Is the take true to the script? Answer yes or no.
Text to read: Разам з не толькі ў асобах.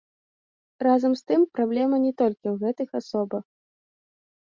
no